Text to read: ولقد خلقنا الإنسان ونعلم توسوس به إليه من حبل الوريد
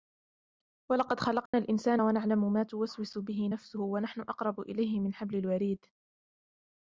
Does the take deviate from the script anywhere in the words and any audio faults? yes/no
yes